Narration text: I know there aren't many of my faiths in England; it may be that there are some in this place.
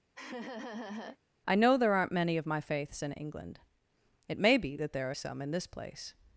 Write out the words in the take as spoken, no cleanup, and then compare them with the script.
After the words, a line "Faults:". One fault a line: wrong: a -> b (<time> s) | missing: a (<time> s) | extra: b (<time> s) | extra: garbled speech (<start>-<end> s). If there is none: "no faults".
I know there aren't many of my faiths in England; it may be that there are some in this place.
Faults:
no faults